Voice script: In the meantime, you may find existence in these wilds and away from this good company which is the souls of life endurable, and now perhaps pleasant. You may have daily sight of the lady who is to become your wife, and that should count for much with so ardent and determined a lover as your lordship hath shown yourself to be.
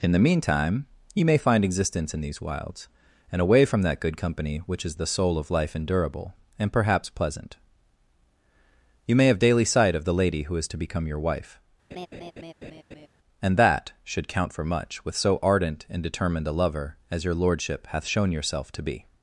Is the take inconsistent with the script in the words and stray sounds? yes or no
yes